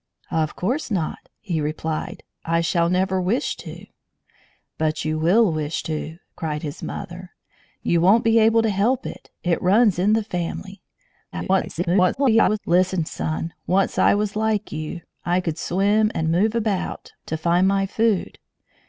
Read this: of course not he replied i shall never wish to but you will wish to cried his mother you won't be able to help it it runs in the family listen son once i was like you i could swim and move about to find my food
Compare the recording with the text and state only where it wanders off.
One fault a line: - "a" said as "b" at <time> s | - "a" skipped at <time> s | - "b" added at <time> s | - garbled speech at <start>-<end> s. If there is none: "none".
- garbled speech at 11.3-12.6 s